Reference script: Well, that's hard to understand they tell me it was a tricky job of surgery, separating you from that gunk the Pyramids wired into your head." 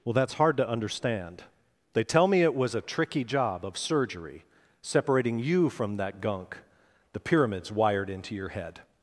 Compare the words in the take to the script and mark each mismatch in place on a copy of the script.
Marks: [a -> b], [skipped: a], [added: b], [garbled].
Well, that's hard to understand they tell me it was a tricky job of surgery, separating you from that gunk the Pyramids wired into your head."